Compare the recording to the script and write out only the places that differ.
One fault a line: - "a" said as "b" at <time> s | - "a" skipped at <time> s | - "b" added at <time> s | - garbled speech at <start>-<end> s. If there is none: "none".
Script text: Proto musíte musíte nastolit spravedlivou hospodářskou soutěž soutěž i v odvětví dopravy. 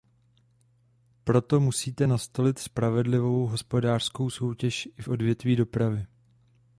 - "musíte" skipped at 2.1 s
- "soutěž" skipped at 4.9 s